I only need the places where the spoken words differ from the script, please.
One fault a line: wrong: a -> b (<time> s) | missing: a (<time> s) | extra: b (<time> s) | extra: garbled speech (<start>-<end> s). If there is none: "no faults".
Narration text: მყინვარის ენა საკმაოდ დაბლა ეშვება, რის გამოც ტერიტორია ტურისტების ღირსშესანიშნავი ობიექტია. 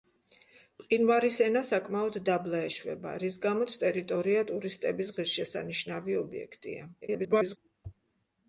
extra: garbled speech (7.0-7.6 s)